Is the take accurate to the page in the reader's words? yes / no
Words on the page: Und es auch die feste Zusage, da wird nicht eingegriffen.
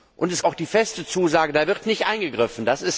yes